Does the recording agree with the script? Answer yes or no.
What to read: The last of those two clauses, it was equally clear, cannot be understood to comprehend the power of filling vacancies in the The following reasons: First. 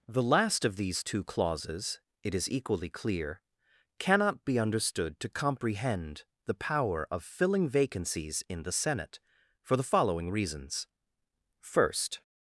no